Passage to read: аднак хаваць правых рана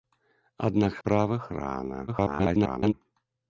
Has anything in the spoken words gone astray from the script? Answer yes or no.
yes